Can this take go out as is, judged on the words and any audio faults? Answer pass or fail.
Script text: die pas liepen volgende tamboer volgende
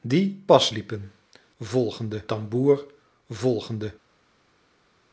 pass